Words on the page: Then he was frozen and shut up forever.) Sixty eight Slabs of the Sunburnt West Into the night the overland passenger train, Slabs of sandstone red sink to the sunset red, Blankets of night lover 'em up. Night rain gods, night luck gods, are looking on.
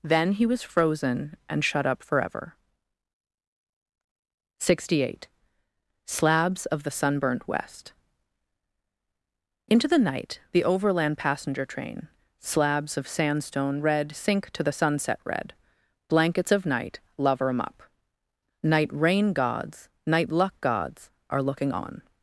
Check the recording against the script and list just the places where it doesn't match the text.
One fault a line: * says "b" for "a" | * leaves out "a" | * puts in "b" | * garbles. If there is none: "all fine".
all fine